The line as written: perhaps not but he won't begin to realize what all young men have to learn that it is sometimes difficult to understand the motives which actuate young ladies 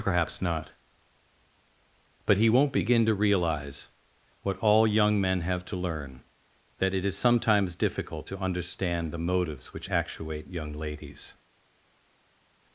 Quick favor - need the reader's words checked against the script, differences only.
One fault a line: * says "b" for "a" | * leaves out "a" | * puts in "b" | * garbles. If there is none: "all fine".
all fine